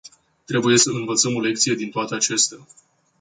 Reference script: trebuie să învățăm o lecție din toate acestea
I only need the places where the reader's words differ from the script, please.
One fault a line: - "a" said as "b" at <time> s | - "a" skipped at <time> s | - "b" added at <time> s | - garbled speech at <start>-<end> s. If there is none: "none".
none